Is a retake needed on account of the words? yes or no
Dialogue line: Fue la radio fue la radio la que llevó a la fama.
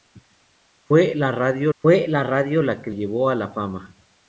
no